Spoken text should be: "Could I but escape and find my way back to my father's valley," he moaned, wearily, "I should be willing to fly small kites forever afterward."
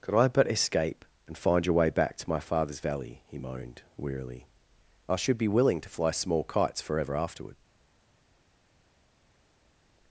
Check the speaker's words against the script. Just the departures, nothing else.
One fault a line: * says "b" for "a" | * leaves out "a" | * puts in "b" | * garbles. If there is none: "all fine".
* says "your" for "my"